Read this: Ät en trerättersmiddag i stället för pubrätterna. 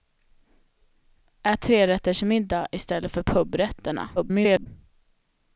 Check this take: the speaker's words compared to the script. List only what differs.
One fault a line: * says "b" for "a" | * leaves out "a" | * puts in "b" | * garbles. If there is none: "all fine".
* leaves out "en"
* garbles